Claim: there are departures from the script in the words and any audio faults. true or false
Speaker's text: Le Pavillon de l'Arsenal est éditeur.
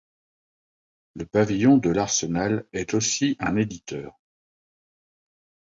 true